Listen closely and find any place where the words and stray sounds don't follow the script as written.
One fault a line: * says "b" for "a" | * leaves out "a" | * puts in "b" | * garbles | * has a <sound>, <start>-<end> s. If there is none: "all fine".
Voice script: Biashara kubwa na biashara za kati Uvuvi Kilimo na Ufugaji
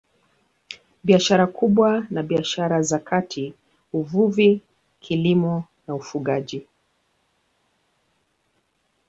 all fine